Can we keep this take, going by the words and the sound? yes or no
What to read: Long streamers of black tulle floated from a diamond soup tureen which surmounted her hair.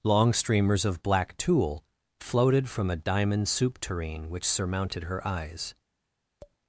no